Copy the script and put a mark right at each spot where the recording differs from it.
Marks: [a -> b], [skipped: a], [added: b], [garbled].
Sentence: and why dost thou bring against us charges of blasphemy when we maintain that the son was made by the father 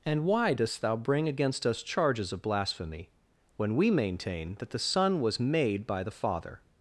and why dost thou bring against us charges of blasphemy when we maintain that the son was made by the father